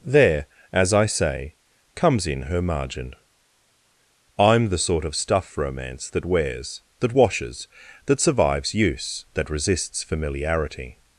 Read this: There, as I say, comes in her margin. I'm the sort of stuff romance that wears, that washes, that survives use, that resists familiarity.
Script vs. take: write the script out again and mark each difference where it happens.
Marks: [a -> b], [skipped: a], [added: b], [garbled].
There, as I say, comes in her margin. I'm the sort of stuff romance that wears, that washes, that survives use, that resists familiarity.